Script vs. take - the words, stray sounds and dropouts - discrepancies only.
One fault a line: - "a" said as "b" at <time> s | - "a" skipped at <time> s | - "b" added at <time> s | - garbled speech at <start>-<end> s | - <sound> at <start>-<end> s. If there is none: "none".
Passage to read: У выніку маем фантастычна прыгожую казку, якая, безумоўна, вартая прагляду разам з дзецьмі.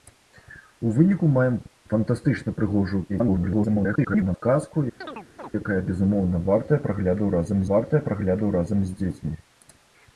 - garbled speech at 3.1-4.4 s
- chirp at 5.0-5.5 s
- "вартая прагляду разам" added at 7.7 s